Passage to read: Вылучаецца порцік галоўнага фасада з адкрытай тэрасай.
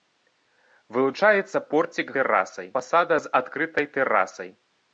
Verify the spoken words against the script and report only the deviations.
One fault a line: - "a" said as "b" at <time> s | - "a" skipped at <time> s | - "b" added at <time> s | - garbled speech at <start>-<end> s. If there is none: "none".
- "галоўнага" said as "тэрасай" at 2.2 s